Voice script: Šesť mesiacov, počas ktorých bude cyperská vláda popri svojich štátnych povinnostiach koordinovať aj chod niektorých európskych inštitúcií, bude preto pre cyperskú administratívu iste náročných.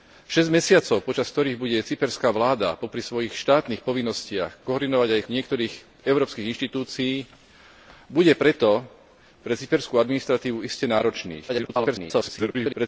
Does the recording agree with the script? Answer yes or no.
no